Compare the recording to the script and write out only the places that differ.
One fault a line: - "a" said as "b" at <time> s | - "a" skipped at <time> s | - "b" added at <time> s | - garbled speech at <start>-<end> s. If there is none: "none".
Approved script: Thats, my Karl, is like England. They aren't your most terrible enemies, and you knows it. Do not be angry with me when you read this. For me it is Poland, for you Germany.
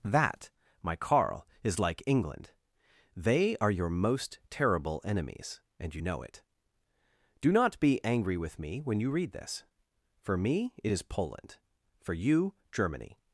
- "Thats" said as "That" at 0.0 s
- "aren't" said as "are" at 3.6 s
- "knows" said as "know" at 6.0 s